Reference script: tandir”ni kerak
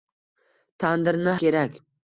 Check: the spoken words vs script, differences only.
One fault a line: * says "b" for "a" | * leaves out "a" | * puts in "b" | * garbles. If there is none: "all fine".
all fine